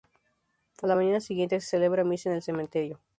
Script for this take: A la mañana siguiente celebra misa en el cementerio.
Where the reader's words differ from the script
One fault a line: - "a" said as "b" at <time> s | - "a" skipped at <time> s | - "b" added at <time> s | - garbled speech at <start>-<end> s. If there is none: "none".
- "se" added at 1.6 s